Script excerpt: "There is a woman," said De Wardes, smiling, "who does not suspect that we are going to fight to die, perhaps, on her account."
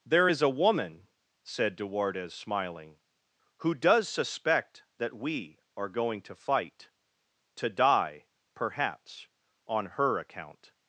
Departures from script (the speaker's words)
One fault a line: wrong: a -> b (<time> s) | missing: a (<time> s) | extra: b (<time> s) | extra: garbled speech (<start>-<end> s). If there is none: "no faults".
missing: not (4.1 s)